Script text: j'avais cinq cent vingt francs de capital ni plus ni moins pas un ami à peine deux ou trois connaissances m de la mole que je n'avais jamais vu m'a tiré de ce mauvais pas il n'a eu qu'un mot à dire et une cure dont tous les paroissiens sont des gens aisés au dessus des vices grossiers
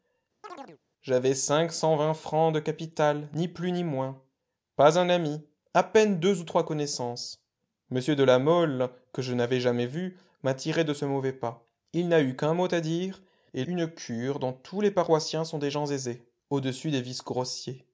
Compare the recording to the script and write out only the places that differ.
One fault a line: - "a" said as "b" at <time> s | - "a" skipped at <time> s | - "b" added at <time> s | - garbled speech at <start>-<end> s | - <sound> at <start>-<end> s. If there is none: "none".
- chirp at 0.4-0.8 s